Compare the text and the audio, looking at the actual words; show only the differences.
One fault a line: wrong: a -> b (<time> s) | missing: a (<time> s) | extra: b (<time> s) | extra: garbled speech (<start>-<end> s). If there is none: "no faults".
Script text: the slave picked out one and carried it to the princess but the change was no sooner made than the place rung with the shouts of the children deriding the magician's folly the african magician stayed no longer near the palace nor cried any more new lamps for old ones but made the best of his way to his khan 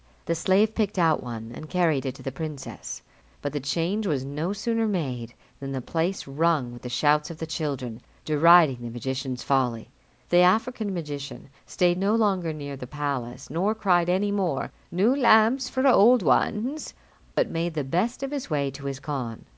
no faults